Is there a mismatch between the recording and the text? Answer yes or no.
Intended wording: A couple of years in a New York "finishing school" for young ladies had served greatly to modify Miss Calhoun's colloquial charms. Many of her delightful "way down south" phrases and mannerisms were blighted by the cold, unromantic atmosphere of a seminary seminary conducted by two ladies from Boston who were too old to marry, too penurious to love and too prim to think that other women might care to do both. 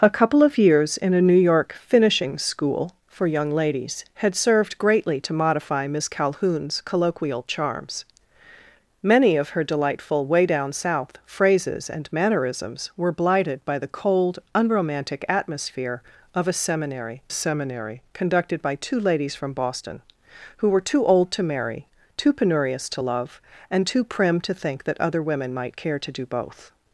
no